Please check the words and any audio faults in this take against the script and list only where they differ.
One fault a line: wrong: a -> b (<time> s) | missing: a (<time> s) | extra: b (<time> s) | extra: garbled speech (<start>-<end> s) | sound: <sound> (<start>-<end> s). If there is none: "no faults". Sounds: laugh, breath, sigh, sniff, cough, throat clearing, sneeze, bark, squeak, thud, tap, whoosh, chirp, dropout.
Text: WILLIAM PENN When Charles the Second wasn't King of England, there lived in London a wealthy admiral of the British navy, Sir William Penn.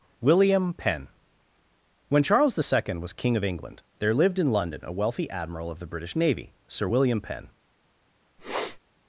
wrong: wasn't -> was (3.0 s)
sound: sniff (8.4-8.8 s)